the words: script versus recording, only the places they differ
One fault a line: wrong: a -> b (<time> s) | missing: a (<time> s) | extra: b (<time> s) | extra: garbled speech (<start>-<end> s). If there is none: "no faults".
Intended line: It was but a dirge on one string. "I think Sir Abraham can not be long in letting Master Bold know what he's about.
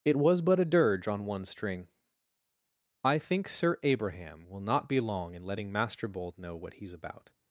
wrong: can -> will (4.5 s)